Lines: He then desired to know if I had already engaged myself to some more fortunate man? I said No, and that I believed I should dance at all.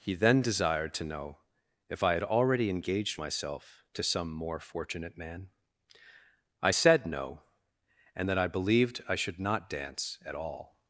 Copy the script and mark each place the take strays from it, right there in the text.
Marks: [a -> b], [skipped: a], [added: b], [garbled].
He then desired to know if I had already engaged myself to some more fortunate man? I said No, and that I believed I should [added: not] dance at all.